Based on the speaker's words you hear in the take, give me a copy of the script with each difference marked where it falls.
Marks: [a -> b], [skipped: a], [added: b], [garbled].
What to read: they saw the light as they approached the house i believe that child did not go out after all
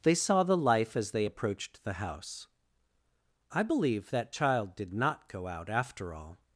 they saw the [light -> life] as they approached the house i believe that child did not go out after all